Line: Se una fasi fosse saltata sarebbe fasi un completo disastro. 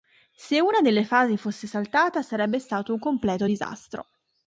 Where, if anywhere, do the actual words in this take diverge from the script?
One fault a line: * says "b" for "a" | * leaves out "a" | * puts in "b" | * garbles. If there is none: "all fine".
* puts in "delle"
* says "stato" for "fasi"